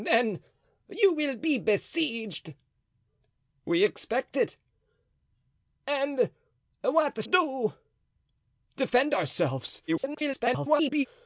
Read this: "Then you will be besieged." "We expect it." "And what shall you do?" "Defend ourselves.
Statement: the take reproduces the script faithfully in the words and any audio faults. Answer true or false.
false